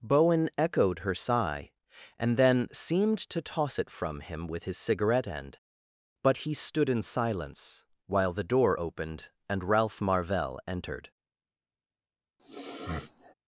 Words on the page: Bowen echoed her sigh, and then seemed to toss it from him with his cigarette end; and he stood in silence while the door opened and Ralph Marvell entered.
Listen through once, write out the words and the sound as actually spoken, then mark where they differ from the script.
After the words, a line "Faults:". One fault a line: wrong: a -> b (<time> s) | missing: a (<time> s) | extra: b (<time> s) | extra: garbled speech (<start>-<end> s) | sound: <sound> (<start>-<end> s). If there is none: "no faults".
Bowen echoed her sigh, and then seemed to toss it from him with his cigarette end; but he stood in silence while the door opened and Ralph Marvell entered.
Faults:
wrong: and -> but (6.2 s)
sound: sniff (12.4-13.3 s)